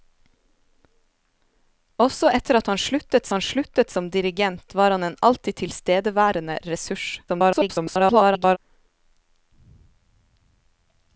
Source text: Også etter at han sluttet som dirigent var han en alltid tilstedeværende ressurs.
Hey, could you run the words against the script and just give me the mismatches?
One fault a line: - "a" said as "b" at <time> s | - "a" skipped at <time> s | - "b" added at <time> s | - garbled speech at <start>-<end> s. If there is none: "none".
- "han sluttet" added at 3.3 s
- garbled speech at 7.3-8.6 s